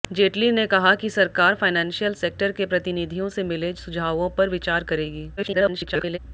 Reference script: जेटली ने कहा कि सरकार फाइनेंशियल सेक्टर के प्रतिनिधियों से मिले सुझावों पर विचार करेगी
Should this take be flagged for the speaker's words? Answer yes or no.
yes